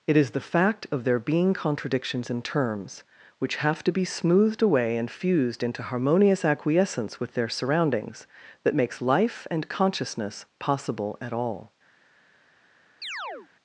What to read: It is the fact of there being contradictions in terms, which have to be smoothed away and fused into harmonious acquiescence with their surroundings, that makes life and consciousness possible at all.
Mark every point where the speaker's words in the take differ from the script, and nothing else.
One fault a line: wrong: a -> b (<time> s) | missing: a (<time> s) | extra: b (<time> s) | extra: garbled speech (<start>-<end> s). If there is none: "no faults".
no faults